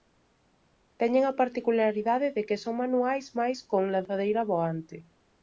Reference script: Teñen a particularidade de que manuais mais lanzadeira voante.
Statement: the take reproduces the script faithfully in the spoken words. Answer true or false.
false